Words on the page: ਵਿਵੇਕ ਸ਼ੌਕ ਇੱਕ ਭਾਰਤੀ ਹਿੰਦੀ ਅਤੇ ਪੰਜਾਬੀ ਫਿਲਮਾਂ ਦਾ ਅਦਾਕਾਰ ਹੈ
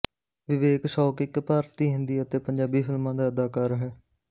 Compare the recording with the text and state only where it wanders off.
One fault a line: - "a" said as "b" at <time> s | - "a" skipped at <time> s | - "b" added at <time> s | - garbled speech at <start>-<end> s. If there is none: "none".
none